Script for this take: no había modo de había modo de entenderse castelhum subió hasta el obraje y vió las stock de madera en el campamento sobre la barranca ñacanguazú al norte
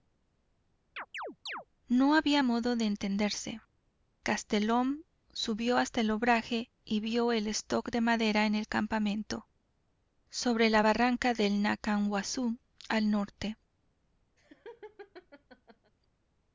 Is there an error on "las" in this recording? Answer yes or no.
yes